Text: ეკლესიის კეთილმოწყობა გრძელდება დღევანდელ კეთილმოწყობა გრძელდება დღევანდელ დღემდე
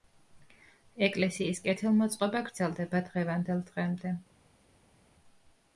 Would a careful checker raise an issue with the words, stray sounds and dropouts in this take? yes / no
yes